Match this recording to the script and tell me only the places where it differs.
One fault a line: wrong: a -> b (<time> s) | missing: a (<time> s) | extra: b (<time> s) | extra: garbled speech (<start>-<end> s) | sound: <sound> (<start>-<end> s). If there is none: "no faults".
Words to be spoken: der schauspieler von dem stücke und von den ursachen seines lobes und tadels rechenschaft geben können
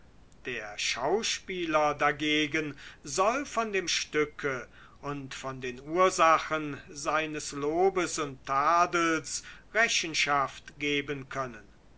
extra: dagegen soll (1.9 s)